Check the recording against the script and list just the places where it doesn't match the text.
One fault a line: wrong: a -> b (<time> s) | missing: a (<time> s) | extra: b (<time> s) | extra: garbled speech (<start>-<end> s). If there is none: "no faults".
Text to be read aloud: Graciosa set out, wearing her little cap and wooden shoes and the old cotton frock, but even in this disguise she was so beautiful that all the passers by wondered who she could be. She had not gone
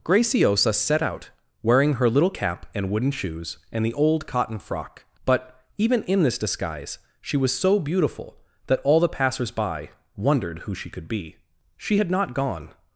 no faults